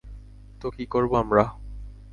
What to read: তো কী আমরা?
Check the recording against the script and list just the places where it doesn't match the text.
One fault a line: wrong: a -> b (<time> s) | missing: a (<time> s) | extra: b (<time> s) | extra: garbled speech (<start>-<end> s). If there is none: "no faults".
extra: করবো (0.9 s)